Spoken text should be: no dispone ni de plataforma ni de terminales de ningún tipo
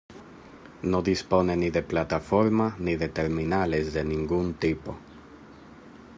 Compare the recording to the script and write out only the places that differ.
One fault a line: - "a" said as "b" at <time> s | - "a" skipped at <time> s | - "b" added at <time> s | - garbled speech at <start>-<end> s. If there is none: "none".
none